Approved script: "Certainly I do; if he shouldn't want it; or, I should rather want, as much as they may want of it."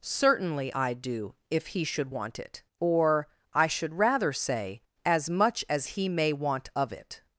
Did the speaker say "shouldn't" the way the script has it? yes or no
no